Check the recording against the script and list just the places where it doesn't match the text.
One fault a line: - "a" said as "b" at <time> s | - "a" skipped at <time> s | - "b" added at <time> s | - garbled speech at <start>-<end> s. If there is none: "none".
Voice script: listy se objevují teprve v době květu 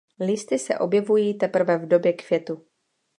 none